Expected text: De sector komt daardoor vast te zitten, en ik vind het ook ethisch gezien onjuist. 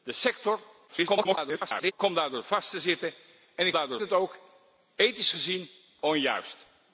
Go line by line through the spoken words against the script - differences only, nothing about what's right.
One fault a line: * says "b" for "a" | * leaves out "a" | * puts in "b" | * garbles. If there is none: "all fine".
* garbles
* says "daardoor" for "vind"